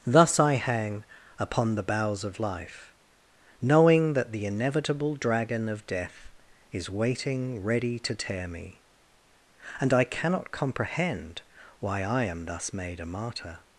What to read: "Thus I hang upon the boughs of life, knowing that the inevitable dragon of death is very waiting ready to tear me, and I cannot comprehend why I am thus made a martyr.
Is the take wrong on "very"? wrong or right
wrong